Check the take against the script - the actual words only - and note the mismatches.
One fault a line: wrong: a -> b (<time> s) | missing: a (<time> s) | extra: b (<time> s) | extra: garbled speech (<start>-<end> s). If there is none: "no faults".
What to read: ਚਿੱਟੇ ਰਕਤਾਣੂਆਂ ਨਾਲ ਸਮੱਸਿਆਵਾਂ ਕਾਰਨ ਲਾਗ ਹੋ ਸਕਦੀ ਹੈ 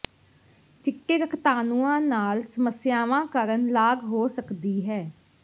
no faults